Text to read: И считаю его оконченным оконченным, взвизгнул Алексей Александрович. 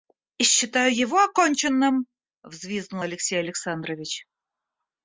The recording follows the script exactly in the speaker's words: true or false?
false